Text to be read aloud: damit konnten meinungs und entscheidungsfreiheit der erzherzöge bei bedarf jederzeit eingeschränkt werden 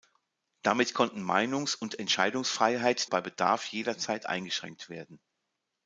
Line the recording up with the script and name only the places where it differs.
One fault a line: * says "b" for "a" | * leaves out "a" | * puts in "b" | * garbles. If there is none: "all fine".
* leaves out "der erzherzöge"